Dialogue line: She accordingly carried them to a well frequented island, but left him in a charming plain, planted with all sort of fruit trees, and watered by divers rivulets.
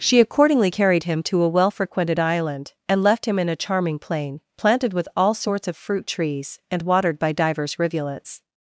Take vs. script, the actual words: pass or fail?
fail